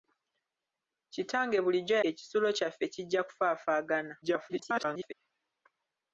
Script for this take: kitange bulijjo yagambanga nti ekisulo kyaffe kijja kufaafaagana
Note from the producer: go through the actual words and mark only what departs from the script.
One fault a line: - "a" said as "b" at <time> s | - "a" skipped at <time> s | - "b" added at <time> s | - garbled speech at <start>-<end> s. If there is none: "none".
- "yagambanga nti" skipped at 1.9 s
- garbled speech at 4.2-5.1 s